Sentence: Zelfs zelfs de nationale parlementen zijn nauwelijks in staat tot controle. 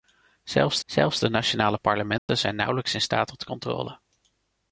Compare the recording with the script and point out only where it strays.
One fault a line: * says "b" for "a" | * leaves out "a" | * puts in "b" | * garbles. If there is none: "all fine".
all fine